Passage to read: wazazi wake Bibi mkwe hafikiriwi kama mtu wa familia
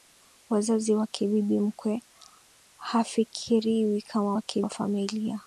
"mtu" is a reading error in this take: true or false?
true